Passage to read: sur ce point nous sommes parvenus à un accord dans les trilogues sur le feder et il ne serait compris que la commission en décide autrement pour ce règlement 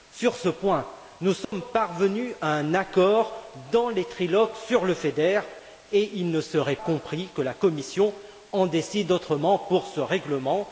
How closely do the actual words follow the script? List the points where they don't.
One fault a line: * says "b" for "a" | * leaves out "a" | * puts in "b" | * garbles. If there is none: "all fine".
all fine